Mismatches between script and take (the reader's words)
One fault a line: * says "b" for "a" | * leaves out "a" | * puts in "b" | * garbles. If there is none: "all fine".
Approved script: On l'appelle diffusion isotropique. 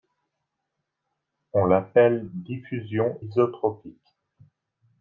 all fine